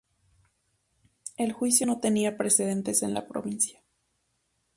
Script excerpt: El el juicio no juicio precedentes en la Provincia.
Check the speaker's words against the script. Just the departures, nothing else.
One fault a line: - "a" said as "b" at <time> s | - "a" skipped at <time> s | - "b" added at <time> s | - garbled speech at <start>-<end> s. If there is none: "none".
- "el" skipped at 1.5 s
- "juicio" said as "tenía" at 2.0 s